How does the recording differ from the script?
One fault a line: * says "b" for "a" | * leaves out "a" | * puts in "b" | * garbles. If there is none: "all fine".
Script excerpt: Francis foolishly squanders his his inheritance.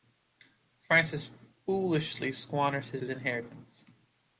all fine